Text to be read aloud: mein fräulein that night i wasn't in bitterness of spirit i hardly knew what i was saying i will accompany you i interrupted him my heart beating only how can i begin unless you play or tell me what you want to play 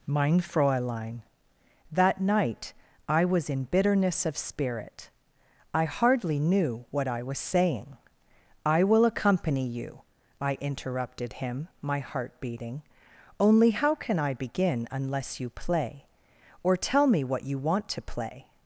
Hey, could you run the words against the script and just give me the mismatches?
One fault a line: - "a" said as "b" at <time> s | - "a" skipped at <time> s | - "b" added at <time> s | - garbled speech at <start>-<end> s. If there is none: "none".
- "wasn't" said as "was" at 3.2 s